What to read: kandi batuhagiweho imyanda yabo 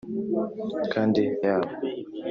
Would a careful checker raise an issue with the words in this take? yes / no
yes